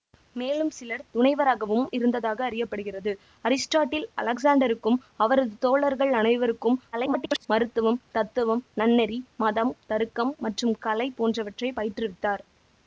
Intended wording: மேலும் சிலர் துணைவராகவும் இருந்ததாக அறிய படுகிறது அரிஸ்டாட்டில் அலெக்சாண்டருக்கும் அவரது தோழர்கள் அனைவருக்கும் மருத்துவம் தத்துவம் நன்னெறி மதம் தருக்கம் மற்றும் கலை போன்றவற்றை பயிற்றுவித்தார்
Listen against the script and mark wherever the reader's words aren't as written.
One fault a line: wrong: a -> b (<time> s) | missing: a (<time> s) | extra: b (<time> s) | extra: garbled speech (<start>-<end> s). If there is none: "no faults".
extra: garbled speech (6.9-7.5 s)